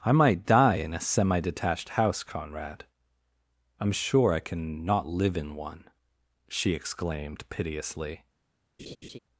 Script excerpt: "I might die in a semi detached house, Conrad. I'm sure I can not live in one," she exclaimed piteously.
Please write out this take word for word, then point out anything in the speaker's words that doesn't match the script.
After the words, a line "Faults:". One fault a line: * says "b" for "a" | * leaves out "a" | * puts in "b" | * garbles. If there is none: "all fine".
"I might die in a semi detached house, Conrad. I'm sure I can not live in one," she exclaimed piteously.
Faults:
all fine